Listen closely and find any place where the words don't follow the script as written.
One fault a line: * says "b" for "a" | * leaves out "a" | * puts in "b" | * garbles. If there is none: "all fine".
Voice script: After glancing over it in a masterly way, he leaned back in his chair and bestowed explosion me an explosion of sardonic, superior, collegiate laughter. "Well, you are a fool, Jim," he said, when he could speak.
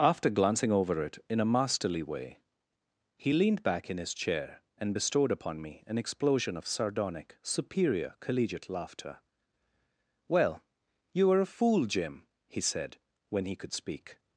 * says "upon" for "explosion"